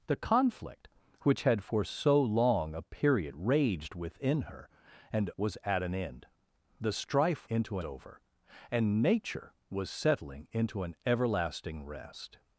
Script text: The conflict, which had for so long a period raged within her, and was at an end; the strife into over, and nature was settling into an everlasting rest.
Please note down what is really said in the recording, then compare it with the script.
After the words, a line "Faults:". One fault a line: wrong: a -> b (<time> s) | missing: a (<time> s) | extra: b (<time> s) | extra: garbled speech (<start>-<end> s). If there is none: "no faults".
The conflict, which had for so long a period raged within her, and was at an end; the strife into over, and nature was settling into an everlasting rest.
Faults:
no faults